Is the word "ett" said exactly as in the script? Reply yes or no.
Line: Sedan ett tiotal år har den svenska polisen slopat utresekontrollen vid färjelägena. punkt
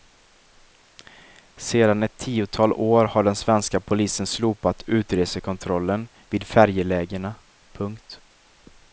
yes